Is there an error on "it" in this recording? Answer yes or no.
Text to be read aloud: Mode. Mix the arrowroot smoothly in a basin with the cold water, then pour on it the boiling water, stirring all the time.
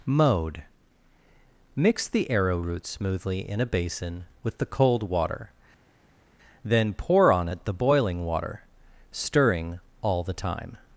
no